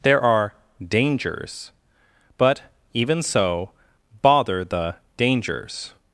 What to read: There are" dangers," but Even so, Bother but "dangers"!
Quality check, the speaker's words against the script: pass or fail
fail